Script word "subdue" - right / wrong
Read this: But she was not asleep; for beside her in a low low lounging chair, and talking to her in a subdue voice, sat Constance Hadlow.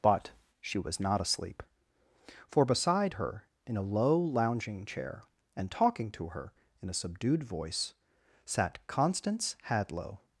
wrong